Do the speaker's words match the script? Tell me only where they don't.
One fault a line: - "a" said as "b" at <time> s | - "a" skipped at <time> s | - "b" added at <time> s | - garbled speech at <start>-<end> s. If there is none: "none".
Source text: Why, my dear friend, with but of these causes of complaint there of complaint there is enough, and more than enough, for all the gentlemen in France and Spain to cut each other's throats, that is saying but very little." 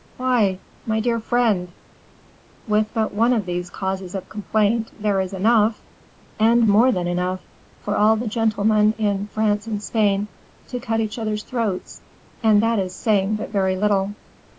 - "one" added at 3.1 s
- "of complaint there" skipped at 5.2 s
- "and" added at 12.4 s